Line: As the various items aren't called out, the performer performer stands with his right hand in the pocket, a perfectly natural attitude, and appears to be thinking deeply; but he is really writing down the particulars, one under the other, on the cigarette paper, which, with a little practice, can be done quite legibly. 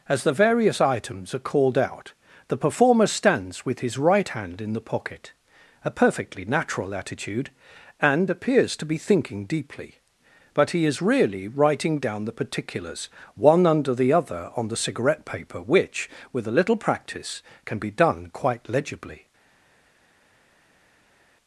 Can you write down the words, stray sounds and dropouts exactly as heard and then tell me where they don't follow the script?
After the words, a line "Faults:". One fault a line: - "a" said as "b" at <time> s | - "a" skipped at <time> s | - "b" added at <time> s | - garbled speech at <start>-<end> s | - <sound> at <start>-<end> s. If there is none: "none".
As the various items are called out, the performer stands with his right hand in the pocket, a perfectly natural attitude, and appears to be thinking deeply; but he is really writing down the particulars, one under the other, on the cigarette paper, which, with a little practice, can be done quite legibly.
Faults:
- "aren't" said as "are" at 1.4 s
- "performer" skipped at 3.1 s